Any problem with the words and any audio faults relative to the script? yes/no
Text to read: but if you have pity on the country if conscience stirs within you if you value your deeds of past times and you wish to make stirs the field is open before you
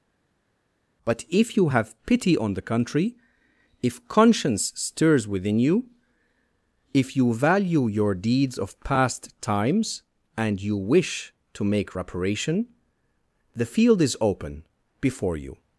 yes